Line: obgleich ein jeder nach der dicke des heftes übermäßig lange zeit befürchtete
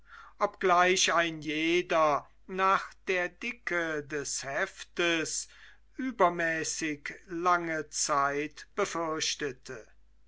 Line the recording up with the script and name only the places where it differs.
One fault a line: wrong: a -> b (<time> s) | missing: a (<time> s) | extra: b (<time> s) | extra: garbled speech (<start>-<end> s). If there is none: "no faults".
no faults